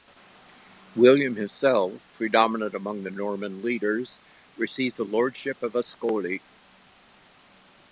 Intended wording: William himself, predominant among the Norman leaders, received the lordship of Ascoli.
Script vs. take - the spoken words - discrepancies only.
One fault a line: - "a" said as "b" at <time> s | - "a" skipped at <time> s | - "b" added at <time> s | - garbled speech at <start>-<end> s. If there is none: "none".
none